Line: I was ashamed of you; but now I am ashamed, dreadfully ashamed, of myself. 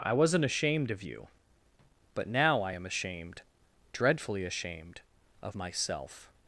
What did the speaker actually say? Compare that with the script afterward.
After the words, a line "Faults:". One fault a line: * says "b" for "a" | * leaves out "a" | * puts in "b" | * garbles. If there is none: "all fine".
I wasn't ashamed of you; but now I am ashamed, dreadfully ashamed, of myself.
Faults:
* says "wasn't" for "was"